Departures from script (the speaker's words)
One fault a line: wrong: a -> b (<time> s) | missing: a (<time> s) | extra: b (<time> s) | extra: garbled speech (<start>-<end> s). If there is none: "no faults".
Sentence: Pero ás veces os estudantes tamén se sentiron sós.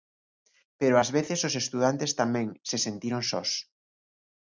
no faults